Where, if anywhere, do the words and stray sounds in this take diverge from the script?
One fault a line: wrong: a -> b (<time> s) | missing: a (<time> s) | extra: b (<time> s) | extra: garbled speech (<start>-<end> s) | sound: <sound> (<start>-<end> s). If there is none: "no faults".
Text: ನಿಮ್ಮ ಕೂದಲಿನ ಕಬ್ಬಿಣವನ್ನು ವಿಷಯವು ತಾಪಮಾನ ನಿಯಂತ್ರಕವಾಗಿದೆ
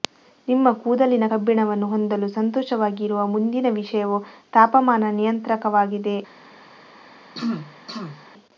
extra: ಹೊಂದಲು ಸಂತೋಷವಾಗಿರುವ ಮುಂದಿನ (1.9 s)
sound: throat clearing (7.3-8.3 s)